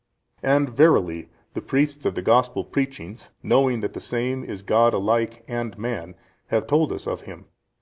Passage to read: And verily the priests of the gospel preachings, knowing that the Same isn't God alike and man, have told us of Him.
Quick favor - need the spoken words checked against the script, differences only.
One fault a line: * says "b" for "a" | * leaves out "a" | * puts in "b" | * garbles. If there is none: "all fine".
* says "is" for "isn't"